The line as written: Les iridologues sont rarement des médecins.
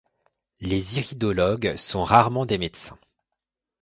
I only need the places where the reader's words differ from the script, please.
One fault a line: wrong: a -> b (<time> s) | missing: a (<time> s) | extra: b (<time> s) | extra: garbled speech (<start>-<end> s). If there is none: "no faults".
no faults